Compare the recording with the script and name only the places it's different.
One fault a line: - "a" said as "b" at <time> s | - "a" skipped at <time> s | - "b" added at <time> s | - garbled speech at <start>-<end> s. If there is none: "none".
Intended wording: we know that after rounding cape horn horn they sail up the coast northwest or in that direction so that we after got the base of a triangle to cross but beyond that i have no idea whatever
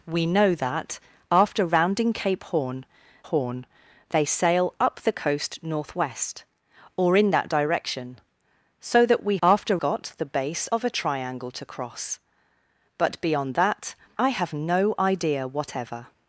none